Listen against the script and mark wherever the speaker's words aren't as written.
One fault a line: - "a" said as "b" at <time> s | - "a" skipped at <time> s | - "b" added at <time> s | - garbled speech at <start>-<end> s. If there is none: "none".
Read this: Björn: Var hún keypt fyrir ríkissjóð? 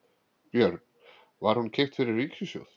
none